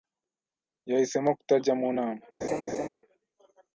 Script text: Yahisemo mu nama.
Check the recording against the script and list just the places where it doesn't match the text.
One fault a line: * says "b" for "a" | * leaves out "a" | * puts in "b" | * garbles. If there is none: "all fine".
* puts in "kutajya"